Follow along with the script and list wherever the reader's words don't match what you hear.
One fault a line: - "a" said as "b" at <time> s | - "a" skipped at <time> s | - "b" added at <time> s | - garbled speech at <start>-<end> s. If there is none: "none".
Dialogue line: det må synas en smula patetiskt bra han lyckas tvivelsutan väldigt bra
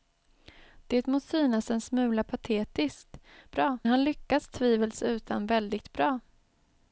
none